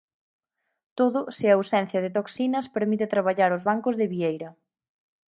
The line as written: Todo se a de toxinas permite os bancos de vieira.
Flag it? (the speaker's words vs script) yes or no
yes